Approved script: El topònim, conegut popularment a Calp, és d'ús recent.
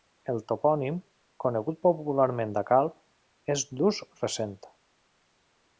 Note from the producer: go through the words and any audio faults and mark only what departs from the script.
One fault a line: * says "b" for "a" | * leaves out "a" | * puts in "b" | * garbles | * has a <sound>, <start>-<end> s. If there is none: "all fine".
all fine